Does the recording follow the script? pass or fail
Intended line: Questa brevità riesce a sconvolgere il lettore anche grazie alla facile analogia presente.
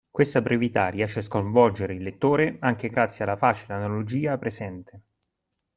pass